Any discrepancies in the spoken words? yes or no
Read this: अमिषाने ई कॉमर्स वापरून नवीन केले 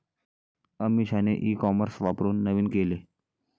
no